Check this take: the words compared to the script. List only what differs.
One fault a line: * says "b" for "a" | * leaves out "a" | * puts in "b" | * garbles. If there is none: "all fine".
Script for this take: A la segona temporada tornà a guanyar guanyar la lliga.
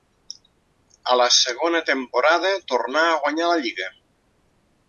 * leaves out "guanyar"